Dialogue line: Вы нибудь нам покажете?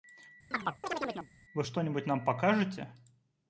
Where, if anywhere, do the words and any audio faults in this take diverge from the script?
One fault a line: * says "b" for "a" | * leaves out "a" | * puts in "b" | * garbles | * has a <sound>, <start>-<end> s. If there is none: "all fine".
* has a chirp, 0.5-1.3 s
* puts in "что"